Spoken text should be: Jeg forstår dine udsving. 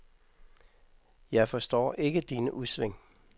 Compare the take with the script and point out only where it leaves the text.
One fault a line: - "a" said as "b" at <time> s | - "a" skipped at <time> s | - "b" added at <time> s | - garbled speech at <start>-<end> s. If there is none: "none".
- "ikke" added at 1.9 s